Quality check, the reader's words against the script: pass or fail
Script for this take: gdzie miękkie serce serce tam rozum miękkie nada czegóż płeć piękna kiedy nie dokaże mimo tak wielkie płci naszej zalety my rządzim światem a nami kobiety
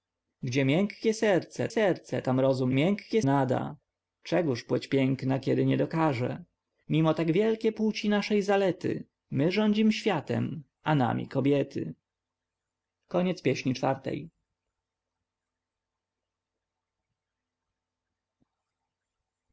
pass